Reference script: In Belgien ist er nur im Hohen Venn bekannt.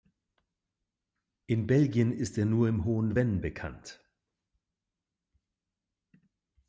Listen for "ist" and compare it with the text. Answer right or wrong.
right